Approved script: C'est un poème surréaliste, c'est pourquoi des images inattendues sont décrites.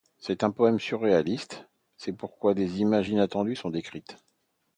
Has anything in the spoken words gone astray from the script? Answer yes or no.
no